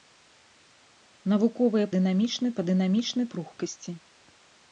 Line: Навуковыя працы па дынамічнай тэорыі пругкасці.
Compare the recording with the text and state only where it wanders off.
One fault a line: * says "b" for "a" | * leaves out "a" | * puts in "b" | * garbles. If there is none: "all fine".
* says "дынамічнай" for "працы"
* leaves out "тэорыі"